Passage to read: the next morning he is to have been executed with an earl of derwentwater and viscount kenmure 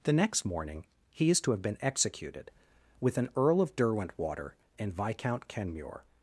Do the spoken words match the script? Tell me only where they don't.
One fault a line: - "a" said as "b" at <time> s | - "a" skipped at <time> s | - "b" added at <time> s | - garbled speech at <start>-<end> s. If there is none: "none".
none